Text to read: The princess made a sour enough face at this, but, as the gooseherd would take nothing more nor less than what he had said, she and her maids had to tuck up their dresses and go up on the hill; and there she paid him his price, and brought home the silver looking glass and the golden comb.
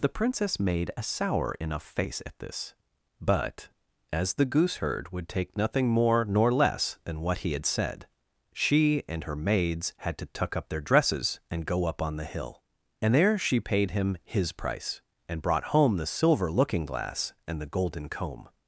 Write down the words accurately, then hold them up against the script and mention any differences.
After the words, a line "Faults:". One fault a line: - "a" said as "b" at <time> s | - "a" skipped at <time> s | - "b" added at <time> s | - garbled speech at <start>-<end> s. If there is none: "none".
The princess made a sour enough face at this, but, as the gooseherd would take nothing more nor less than what he had said, she and her maids had to tuck up their dresses and go up on the hill; and there she paid him his price, and brought home the silver looking glass and the golden comb.
Faults:
none